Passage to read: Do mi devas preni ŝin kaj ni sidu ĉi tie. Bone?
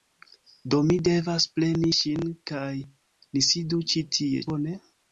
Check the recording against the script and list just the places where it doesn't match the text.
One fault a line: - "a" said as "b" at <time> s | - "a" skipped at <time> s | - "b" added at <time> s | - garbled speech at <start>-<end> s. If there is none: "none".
none